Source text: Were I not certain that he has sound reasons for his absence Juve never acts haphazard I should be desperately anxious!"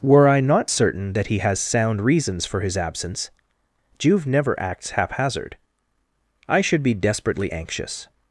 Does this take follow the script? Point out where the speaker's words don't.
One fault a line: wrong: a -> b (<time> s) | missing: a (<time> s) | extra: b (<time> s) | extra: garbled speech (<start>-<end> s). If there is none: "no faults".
no faults